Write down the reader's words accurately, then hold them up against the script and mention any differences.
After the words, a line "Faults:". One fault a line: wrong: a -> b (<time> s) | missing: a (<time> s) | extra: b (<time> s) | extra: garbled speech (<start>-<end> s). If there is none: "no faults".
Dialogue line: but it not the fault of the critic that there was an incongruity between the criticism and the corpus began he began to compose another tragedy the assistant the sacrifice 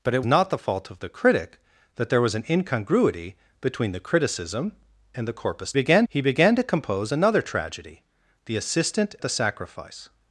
but it not the fault of the critic that there was an incongruity between the criticism and the corpus began he began to compose another tragedy the assistant the sacrifice
Faults:
no faults